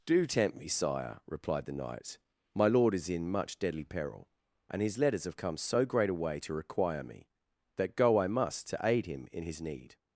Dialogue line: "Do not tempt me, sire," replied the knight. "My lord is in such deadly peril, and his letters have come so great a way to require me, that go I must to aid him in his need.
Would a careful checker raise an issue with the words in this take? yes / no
yes